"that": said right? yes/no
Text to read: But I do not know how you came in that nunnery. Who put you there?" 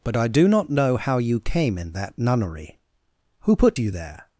yes